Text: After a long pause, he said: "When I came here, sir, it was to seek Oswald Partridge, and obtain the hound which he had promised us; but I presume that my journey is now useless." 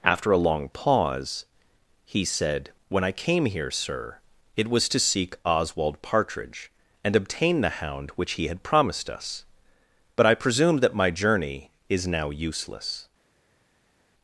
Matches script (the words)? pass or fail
pass